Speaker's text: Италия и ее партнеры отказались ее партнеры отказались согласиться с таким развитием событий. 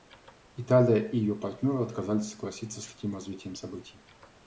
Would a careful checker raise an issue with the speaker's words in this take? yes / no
yes